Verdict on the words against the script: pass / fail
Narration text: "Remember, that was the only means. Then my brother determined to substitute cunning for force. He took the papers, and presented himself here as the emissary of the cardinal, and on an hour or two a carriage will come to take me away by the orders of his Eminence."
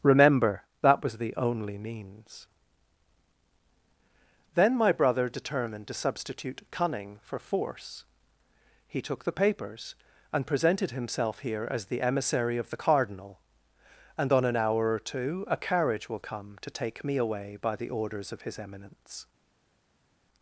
pass